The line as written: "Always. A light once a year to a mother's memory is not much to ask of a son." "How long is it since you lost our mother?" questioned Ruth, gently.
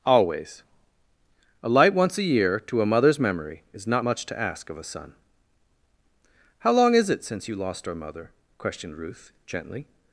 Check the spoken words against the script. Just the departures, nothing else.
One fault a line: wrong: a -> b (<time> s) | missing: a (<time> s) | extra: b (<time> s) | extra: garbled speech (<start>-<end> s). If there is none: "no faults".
no faults